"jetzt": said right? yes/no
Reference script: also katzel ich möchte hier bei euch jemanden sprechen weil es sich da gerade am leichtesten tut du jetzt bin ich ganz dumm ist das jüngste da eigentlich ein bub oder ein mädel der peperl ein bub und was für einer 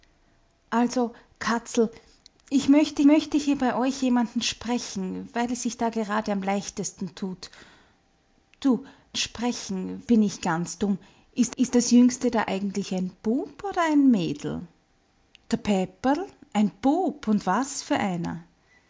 no